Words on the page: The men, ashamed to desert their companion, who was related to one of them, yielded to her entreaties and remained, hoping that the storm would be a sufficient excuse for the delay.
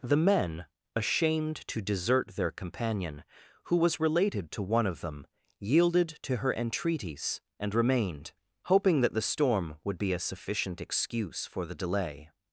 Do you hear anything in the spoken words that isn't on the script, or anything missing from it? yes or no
no